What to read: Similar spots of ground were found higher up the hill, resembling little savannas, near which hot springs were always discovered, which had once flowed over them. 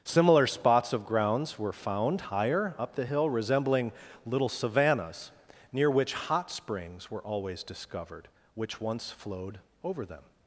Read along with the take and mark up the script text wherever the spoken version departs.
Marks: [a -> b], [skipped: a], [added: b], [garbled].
Similar spots of [ground -> grounds] were found higher up the hill, resembling little savannas, near which hot springs were always discovered, which [skipped: had] once flowed over them.